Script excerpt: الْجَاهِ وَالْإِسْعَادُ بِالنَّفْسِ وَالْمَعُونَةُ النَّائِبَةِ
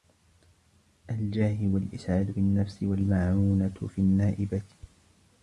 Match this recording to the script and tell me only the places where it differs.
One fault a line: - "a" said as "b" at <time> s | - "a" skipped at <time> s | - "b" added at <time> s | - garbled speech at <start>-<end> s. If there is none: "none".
- "فِي" added at 3.9 s